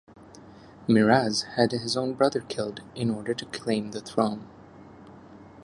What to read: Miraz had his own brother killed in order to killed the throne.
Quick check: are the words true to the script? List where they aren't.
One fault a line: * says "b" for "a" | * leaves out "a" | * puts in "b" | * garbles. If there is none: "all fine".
* says "claim" for "killed"